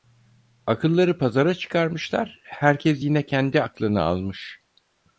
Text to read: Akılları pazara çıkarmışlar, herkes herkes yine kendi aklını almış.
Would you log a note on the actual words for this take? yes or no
yes